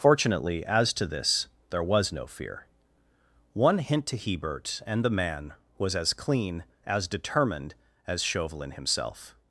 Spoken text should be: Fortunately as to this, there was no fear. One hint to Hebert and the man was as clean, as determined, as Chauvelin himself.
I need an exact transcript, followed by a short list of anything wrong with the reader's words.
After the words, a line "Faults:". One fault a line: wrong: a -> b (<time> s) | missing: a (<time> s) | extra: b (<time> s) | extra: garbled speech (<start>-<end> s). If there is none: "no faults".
Fortunately as to this, there was no fear. One hint to Hebert and the man was as clean, as determined, as Chauvelin himself.
Faults:
no faults